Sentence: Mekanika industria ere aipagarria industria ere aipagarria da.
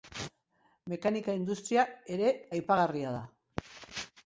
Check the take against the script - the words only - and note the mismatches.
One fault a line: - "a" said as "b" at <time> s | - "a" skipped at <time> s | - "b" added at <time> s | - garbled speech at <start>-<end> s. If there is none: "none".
- "industria ere aipagarria" skipped at 3.1 s